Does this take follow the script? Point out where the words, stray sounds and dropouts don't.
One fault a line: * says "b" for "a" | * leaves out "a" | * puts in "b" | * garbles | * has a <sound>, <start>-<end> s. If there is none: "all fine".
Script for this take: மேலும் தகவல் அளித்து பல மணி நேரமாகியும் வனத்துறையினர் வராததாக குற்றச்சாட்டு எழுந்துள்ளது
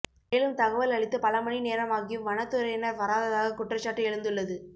all fine